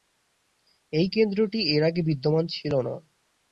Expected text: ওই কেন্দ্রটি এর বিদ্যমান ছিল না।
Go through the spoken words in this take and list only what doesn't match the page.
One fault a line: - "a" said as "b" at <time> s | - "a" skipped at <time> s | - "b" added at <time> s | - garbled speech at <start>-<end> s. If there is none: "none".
- "ওই" said as "এই" at 0.9 s
- "আগে" added at 1.8 s